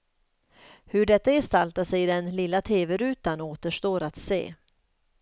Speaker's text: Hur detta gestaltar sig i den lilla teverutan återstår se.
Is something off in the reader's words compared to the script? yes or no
yes